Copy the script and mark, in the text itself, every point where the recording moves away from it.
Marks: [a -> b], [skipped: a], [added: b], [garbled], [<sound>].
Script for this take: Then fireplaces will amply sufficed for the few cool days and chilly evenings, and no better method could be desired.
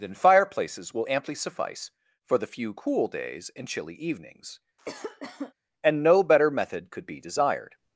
Then fireplaces will amply [sufficed -> suffice] for the few cool days and chilly evenings, [cough] and no better method could be desired.